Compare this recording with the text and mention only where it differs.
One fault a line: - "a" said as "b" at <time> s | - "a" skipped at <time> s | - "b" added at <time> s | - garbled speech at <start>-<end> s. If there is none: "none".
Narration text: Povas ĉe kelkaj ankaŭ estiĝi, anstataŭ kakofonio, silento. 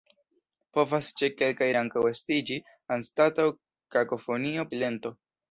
none